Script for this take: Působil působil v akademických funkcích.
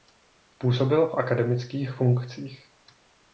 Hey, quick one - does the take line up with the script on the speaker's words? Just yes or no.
no